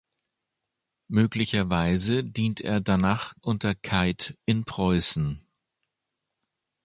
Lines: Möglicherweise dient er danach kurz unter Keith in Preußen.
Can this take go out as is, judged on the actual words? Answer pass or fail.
fail